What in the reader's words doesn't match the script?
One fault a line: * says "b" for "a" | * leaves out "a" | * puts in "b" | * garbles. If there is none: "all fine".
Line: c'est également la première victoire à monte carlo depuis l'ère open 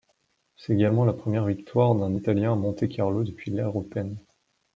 * puts in "d'un italien"